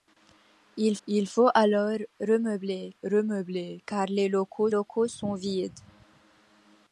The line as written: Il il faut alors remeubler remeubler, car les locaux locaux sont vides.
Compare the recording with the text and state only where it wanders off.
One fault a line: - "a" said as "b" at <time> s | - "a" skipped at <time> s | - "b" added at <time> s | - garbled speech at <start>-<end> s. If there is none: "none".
none